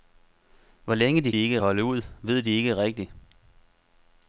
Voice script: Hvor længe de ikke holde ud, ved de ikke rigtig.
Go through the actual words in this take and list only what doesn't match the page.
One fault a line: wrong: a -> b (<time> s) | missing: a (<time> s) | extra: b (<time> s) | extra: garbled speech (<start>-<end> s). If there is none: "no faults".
no faults